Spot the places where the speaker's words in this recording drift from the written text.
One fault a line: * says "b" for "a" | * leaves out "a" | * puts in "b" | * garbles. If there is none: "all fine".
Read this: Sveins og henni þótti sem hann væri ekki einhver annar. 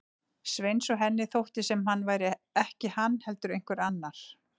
* puts in "hann heldur"